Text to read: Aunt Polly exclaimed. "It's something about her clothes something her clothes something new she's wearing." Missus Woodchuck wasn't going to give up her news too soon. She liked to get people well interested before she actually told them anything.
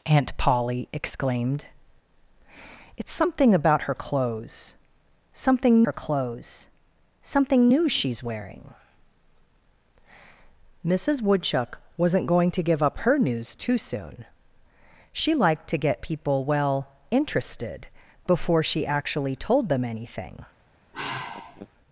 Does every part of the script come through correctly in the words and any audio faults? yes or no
no